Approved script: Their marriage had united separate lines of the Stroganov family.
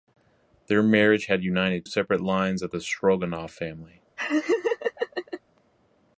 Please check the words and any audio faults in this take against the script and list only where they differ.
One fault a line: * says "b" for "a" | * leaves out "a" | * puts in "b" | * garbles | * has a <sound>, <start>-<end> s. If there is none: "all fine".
* has a laugh, 4.2-5.4 s